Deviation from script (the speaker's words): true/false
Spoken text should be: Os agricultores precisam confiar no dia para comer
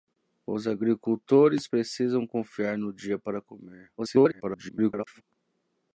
true